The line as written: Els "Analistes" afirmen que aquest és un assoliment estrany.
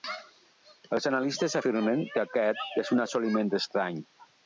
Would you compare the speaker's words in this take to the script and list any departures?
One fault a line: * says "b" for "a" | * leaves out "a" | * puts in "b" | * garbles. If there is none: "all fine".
all fine